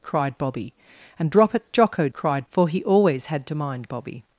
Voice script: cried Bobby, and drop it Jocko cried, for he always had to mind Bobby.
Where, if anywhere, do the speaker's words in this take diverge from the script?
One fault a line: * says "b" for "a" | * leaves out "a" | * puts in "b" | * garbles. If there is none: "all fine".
all fine